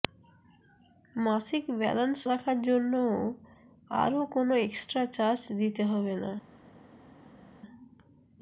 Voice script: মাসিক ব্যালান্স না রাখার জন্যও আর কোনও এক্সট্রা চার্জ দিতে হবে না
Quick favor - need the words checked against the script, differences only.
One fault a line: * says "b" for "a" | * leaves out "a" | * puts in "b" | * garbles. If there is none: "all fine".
* leaves out "না"